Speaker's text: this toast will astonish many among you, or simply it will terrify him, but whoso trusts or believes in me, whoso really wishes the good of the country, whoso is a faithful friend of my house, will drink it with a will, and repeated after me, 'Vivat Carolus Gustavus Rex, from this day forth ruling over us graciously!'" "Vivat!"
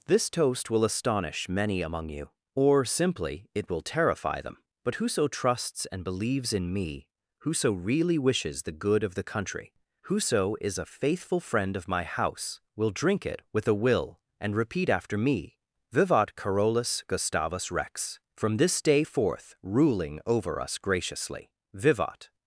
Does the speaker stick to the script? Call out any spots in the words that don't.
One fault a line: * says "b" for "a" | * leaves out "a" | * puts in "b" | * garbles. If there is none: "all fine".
* says "them" for "him"
* says "and" for "or"
* says "repeat" for "repeated"